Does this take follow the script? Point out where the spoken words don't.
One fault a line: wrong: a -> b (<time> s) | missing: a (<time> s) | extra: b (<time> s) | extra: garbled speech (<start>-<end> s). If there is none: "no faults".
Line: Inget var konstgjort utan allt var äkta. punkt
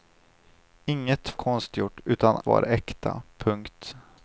missing: var (1.4 s)
missing: allt (2.4 s)